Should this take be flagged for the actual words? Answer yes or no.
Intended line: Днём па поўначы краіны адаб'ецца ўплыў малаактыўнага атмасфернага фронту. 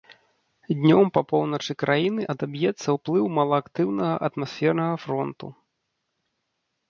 no